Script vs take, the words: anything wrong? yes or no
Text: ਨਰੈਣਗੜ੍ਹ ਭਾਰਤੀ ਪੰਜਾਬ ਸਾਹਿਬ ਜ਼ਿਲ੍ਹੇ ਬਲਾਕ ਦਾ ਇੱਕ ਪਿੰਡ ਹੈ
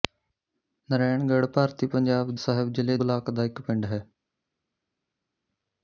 no